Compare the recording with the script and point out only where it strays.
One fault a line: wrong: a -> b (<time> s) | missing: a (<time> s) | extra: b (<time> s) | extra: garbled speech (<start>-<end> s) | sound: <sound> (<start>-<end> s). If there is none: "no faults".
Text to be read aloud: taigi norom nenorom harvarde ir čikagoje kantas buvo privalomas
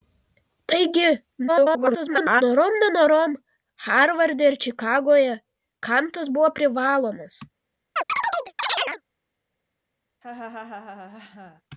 extra: garbled speech (1.5-2.4 s)
sound: chirp (8.0-9.0 s)
sound: laugh (10.2-11.6 s)